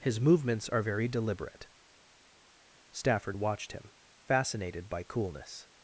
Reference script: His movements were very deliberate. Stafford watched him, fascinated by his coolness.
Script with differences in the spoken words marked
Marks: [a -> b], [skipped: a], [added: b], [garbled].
His movements [were -> are] very deliberate. Stafford watched him, fascinated by [skipped: his] coolness.